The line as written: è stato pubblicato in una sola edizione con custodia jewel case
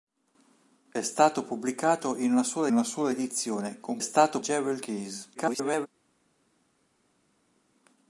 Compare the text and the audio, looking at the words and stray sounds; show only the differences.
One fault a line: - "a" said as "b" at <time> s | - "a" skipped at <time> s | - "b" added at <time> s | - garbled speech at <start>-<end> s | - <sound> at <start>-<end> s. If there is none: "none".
- "una sola" added at 2.7 s
- "custodia" said as "stato" at 4.0 s
- garbled speech at 5.3-5.9 s